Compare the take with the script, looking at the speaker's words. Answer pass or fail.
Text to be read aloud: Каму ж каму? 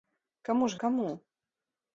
pass